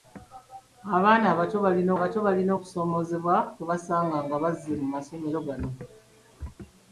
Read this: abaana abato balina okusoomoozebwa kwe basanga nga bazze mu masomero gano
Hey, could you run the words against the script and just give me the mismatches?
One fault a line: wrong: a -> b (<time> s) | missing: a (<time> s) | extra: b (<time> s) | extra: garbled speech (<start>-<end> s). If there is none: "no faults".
extra: abato balina (2.0 s)